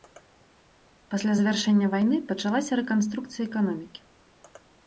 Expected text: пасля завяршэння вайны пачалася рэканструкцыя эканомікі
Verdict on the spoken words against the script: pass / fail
pass